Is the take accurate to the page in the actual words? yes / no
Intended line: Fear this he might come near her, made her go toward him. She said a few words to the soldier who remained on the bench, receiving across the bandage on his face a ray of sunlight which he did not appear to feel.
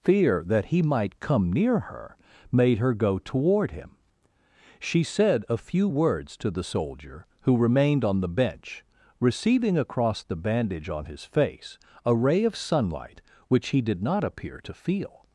no